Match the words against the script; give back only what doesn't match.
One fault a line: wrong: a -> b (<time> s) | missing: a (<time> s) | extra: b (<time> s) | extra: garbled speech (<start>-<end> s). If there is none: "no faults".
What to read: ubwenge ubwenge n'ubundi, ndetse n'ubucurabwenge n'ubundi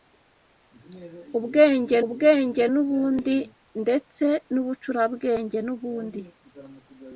no faults